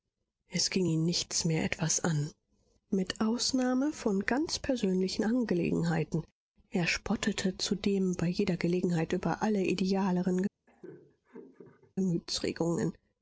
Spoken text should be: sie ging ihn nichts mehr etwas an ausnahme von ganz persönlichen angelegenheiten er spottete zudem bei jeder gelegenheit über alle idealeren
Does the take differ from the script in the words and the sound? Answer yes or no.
yes